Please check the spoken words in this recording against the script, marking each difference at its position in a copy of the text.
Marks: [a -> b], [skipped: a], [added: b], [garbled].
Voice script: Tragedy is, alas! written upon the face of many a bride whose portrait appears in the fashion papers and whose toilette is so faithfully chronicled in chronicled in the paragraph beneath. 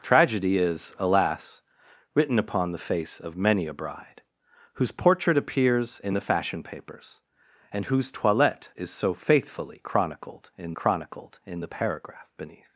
Tragedy is, alas! written upon the face of many a bride whose portrait appears in the fashion papers and whose toilette is so faithfully chronicled in chronicled in the paragraph beneath.